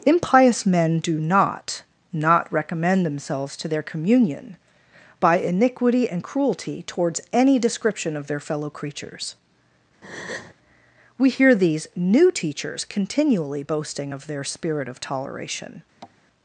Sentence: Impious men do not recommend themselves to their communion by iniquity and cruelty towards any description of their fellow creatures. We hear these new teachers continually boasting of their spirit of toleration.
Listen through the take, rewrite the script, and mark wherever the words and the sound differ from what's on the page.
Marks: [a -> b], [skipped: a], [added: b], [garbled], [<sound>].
Impious men do not [added: not] recommend themselves to their communion by iniquity and cruelty towards any description of their fellow creatures. [breath] We hear these new teachers continually boasting of their spirit of toleration. [tap]